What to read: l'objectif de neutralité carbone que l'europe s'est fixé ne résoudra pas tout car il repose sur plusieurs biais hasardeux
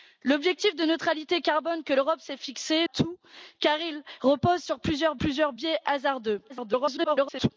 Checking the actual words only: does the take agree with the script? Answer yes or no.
no